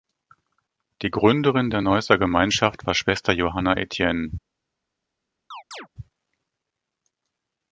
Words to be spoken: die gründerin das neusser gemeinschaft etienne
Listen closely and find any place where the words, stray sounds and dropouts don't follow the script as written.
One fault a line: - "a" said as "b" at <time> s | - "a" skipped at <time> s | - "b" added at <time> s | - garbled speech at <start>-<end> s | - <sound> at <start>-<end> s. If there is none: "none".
- "das" said as "der" at 1.7 s
- "war schwester johanna" added at 2.8 s
- chirp at 5.5-5.9 s